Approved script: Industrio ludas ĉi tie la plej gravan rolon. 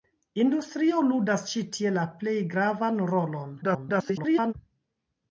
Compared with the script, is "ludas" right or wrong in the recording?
right